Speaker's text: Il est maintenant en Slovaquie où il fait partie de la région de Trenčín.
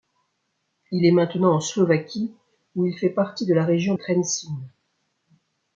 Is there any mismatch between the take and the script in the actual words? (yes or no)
yes